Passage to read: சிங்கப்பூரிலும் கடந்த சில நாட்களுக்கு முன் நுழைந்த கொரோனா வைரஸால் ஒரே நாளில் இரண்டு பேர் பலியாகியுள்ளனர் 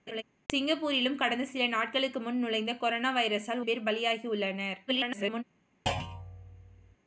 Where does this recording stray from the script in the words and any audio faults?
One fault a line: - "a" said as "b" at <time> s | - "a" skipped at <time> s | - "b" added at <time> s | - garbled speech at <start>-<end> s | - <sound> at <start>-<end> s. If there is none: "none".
- laugh at 0.1-0.2 s
- "ஒரே நாளில் இரண்டு" skipped at 3.6 s
- garbled speech at 4.9-5.4 s
- thud at 5.9-7.0 s